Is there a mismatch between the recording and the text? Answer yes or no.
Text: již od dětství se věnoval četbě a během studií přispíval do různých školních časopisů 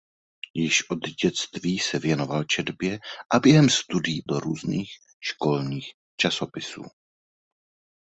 yes